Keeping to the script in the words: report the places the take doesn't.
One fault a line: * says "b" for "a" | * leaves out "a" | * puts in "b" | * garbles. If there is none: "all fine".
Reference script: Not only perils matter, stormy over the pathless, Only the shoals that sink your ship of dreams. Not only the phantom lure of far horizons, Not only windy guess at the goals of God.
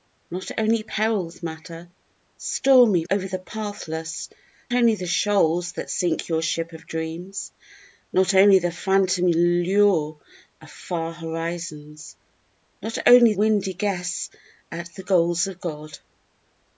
all fine